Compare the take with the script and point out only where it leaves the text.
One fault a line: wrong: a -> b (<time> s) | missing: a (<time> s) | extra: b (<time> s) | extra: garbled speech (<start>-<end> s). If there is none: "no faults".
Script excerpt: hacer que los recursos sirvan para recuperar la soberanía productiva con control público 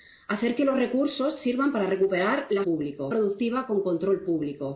wrong: soberanía -> público (2.6 s)